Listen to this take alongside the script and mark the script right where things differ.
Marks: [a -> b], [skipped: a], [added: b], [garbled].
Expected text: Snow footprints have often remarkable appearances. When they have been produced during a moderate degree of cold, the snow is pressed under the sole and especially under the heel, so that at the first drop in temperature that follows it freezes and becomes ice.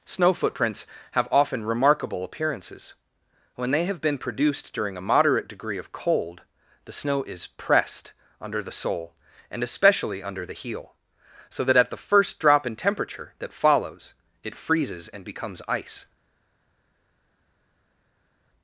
Snow footprints have often remarkable appearances. When they have been produced during a moderate degree of cold, the snow is pressed under the sole and especially under the heel, so that at the first drop in temperature that follows it freezes and becomes ice.